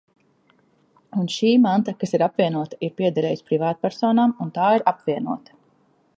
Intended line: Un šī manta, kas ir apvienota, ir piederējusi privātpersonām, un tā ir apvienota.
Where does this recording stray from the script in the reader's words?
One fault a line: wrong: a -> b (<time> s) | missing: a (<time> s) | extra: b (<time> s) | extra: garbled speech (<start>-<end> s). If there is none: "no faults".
no faults